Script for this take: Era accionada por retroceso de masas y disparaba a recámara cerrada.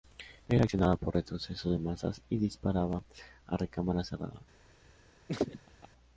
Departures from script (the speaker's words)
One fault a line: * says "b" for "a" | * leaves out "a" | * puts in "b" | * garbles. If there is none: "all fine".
all fine